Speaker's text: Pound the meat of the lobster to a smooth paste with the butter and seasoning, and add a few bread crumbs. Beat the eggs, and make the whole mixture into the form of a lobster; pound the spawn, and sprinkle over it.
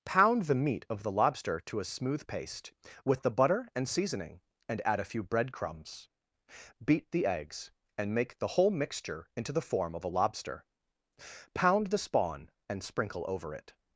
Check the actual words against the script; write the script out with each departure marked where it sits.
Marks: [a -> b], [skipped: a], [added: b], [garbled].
Pound the meat of the lobster to a smooth paste with the butter and seasoning, and add a few bread crumbs. Beat the eggs, and make the whole mixture into the form of a lobster; pound the spawn, and sprinkle over it.